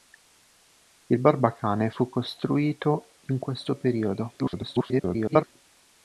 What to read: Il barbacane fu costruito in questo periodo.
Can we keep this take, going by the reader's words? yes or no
no